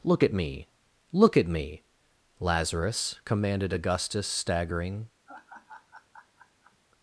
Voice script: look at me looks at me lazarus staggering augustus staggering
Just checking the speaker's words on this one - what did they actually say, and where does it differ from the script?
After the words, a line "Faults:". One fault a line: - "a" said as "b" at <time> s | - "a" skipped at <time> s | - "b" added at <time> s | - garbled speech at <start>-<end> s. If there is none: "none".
look at me look at me lazarus commanded augustus staggering
Faults:
- "looks" said as "look" at 1.1 s
- "staggering" said as "commanded" at 3.2 s